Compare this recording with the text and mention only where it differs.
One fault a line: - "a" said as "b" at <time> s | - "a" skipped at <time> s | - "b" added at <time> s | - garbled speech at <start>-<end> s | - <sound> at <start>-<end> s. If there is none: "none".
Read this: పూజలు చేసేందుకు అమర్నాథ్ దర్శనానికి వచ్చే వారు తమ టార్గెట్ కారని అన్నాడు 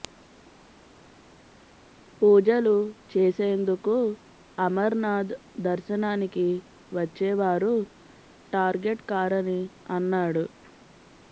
- "తమ" skipped at 7.7 s